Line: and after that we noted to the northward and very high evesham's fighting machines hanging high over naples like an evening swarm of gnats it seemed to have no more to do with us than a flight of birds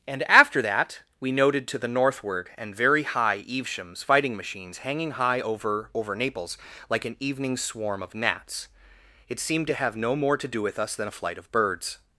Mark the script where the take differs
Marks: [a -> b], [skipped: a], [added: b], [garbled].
and after that we noted to the northward and very high evesham's fighting machines hanging high over [added: over] naples like an evening swarm of gnats it seemed to have no more to do with us than a flight of birds